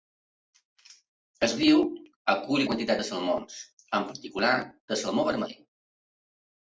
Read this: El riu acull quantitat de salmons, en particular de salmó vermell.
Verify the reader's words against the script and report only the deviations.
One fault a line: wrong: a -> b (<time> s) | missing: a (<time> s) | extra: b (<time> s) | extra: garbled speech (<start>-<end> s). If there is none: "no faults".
no faults